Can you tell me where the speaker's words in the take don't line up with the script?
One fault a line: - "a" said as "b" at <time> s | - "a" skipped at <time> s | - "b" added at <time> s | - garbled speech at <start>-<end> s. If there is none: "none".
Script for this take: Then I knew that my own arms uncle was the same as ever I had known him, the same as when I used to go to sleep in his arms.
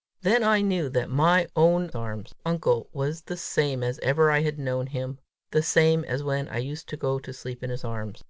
none